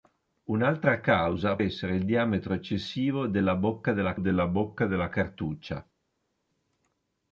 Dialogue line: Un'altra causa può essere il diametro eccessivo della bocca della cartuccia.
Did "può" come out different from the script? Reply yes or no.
yes